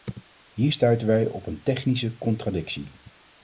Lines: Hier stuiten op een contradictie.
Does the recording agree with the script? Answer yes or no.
no